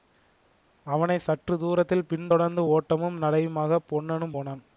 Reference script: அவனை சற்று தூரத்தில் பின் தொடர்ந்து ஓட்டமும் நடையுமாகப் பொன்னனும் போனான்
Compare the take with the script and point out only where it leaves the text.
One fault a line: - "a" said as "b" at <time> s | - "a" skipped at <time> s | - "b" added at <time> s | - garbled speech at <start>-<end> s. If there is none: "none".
none